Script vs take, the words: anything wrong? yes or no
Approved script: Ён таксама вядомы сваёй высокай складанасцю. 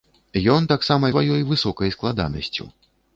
yes